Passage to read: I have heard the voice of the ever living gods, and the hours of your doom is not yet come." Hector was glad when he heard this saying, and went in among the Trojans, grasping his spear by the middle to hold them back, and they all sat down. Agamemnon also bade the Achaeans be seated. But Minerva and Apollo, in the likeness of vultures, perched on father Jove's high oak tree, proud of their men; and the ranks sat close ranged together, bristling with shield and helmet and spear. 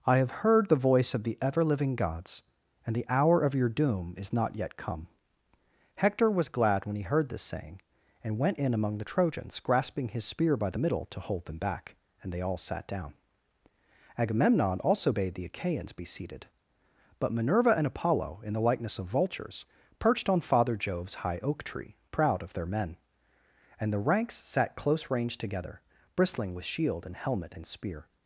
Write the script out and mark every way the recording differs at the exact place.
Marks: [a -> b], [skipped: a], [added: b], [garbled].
I have heard the voice of the ever living gods, and the [hours -> hour] of your doom is not yet come." Hector was glad when he heard this saying, and went in among the Trojans, grasping his spear by the middle to hold them back, and they all sat down. Agamemnon also bade the Achaeans be seated. But Minerva and Apollo, in the likeness of vultures, perched on father Jove's high oak tree, proud of their men; and the ranks sat close ranged together, bristling with shield and helmet and spear.